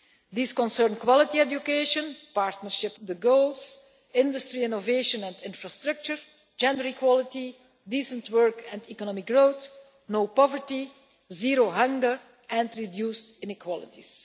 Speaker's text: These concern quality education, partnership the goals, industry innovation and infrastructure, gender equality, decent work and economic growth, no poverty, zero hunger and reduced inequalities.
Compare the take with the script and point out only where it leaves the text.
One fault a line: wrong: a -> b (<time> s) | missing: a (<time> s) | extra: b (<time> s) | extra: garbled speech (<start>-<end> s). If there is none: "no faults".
no faults